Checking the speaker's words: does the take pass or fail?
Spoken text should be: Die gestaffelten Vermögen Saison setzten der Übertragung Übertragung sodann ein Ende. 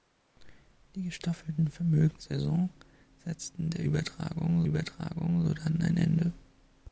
pass